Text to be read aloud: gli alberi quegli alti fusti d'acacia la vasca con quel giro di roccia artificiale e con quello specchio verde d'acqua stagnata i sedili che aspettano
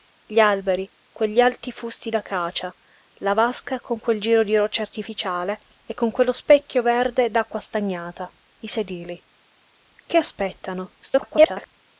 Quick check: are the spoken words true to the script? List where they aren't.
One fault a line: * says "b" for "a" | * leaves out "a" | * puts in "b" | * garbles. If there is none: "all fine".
* garbles